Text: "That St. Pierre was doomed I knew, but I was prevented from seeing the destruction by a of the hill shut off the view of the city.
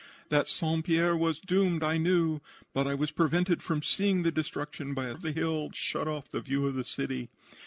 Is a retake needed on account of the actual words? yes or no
no